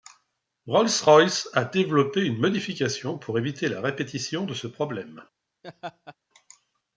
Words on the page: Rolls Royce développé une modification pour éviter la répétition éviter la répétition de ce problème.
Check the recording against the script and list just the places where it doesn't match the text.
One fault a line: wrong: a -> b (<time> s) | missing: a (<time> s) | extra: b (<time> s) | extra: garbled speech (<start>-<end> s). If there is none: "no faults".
extra: a (1.5 s)
missing: éviter la répétition (4.5 s)